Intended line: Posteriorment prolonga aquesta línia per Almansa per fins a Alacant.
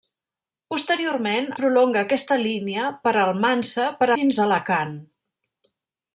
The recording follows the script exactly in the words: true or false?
true